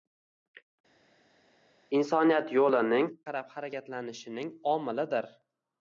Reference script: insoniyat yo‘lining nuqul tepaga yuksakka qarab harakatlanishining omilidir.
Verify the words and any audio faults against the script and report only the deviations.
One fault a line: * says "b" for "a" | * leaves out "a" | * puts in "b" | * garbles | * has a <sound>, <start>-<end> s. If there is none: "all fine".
* leaves out "nuqul tepaga yuksakka"